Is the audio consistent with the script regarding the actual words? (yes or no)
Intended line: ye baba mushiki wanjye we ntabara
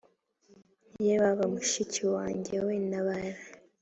yes